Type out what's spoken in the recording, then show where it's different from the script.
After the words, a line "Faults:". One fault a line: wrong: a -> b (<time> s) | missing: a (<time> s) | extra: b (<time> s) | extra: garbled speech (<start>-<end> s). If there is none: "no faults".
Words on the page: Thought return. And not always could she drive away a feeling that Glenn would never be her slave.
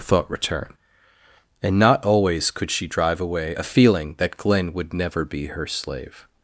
Thought return. And not always could she drive away a feeling that Glenn would never be her slave.
Faults:
no faults